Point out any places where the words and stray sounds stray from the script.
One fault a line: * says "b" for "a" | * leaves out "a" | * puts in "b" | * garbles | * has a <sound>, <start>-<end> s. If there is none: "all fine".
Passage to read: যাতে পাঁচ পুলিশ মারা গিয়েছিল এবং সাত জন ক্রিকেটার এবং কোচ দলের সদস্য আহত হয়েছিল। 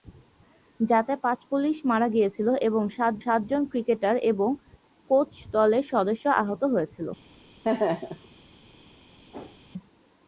* puts in "সাত"
* has a laugh, 7.6-8.3 s
* has a whoosh, 9.3-9.6 s